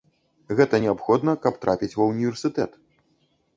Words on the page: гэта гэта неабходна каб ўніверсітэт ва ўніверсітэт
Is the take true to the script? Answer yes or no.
no